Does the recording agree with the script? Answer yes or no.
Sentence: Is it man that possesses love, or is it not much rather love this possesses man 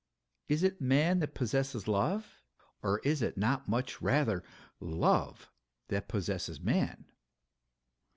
no